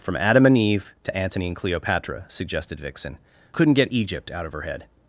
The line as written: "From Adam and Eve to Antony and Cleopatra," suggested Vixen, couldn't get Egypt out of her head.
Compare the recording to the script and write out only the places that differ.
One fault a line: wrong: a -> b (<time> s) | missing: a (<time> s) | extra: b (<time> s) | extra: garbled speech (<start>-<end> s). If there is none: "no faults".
no faults